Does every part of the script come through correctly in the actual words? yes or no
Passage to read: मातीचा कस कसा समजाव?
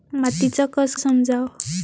no